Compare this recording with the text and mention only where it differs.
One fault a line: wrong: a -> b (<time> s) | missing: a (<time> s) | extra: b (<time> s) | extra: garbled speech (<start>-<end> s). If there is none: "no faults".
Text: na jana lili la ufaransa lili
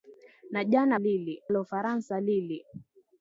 no faults